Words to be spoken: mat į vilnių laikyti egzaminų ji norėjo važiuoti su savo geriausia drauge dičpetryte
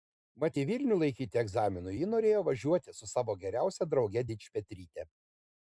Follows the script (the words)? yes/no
yes